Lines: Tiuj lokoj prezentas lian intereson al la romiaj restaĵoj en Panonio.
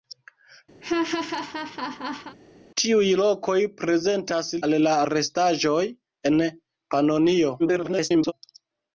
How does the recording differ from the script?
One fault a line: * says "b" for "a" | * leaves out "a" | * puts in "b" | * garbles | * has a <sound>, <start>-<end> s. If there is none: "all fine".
* has a laugh, 0.8-2.4 s
* leaves out "lian intereson"
* leaves out "romiaj"
* garbles